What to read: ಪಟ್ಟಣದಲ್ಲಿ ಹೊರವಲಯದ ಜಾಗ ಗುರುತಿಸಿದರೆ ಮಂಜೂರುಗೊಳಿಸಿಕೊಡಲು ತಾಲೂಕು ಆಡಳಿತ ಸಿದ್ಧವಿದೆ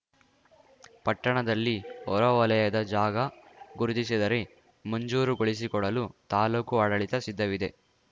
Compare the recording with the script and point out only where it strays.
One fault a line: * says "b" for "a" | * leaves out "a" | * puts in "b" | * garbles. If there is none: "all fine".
all fine